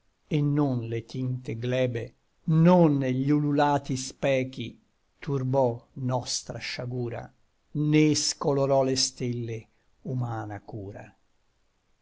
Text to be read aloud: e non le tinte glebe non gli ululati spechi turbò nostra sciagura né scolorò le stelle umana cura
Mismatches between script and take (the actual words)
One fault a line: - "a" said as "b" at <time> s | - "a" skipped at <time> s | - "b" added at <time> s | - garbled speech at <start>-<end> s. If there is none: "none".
none